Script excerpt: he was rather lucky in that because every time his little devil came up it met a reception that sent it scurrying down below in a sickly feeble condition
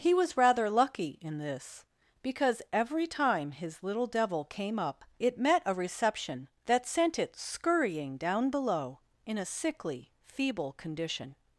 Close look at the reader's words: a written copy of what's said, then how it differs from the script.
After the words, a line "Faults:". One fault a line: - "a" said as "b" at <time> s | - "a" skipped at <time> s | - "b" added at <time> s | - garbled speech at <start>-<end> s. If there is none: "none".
he was rather lucky in this because every time his little devil came up it met a reception that sent it scurrying down below in a sickly feeble condition
Faults:
- "that" said as "this" at 1.4 s